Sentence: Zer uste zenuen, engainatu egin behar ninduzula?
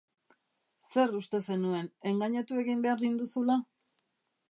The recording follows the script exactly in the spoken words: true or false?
true